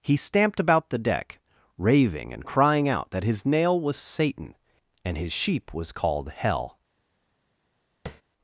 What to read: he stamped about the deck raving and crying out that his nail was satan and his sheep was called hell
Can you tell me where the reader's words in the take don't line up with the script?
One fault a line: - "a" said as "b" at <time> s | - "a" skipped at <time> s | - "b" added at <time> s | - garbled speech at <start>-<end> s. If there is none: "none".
none